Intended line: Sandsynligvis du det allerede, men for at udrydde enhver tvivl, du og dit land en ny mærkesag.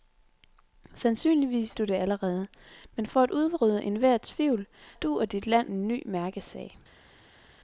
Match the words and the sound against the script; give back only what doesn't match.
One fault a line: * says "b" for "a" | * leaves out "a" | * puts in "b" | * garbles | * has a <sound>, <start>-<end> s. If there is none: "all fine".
all fine